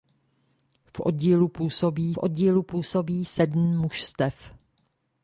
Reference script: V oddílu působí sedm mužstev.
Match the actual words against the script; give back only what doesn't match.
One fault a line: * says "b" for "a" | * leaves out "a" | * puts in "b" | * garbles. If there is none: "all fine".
* puts in "oddílu působí"